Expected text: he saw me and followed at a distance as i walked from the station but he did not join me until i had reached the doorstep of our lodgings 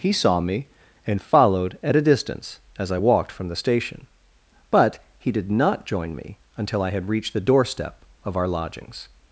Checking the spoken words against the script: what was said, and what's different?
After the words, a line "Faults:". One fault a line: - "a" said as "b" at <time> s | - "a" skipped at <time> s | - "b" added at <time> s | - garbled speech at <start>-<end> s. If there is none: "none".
he saw me and followed at a distance as i walked from the station but he did not join me until i had reached the doorstep of our lodgings
Faults:
none